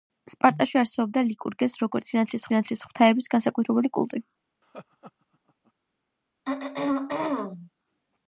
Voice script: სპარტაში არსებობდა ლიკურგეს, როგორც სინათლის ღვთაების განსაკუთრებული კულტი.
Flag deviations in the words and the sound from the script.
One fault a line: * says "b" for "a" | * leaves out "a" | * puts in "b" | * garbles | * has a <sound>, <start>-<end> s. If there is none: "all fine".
* puts in "სინათლის"
* has a laugh, 4.6-5.7 s
* has a throat clearing, 6.4-7.7 s